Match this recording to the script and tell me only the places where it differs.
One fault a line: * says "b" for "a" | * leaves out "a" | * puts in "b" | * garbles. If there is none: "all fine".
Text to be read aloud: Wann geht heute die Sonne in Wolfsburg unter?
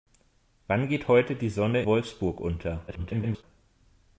* leaves out "in"
* garbles